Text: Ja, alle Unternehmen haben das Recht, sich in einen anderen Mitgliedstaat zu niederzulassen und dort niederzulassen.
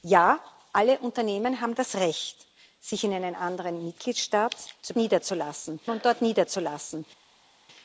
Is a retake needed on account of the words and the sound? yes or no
no